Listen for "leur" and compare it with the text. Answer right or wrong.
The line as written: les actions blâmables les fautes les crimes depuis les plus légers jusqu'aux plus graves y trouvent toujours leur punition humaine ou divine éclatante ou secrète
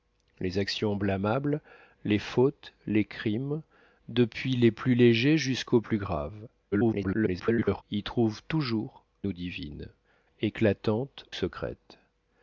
wrong